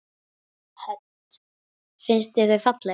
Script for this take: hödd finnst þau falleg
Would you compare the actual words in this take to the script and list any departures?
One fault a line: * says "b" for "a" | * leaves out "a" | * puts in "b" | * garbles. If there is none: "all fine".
* puts in "þér"